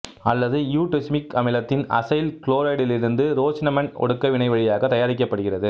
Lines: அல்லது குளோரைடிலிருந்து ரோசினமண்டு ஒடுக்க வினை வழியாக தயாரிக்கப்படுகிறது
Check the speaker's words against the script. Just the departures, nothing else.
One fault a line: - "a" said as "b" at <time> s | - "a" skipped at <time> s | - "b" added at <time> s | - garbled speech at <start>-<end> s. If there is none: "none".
- "இயுடெசுமிக் அமிலத்தின் அசைல்" added at 0.7 s